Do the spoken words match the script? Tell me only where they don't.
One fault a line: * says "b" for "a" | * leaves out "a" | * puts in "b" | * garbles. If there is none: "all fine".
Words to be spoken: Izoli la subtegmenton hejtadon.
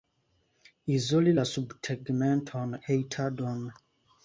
all fine